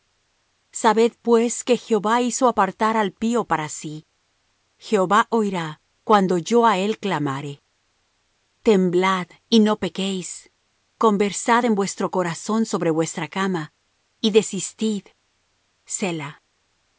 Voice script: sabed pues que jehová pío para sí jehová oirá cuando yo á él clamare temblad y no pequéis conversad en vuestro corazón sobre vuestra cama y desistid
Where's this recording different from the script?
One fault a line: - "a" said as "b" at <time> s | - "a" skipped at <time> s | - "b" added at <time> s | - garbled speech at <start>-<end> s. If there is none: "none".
- "hizo apartar al" added at 2.2 s